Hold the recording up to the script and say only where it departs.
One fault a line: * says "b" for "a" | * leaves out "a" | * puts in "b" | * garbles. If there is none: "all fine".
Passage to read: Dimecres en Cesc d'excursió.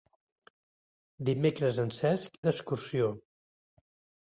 all fine